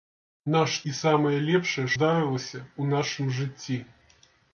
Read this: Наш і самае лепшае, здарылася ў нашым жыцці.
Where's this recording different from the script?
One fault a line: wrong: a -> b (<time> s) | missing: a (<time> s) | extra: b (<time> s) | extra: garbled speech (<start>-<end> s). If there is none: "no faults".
no faults